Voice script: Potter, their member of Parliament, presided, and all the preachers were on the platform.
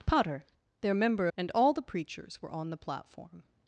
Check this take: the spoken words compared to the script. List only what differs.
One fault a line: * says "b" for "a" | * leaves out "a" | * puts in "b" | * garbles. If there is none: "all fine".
* leaves out "of Parliament presided"